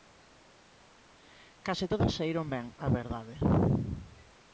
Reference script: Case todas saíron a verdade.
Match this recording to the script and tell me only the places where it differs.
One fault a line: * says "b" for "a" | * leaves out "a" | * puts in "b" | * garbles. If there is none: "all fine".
* puts in "ben"